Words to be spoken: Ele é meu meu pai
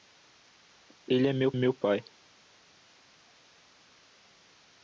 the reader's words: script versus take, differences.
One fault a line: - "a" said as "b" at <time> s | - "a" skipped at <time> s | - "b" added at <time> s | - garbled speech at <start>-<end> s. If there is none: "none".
none